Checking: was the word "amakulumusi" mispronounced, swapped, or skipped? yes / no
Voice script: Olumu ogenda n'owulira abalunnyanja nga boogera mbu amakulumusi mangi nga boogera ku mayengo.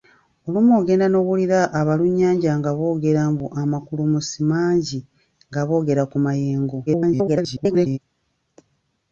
no